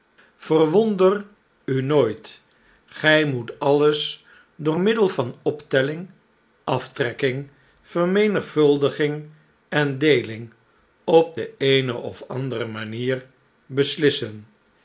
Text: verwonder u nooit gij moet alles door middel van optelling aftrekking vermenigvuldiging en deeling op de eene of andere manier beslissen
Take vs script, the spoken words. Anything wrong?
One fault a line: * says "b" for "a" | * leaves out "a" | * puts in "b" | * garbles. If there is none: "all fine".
all fine